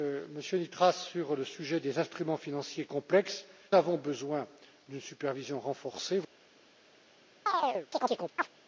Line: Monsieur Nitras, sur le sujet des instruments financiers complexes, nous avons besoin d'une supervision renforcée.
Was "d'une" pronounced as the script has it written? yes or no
yes